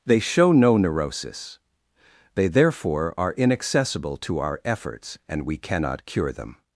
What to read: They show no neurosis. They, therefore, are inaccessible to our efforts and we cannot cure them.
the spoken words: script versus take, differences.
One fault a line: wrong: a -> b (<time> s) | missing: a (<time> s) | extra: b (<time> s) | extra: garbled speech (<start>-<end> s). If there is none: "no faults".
no faults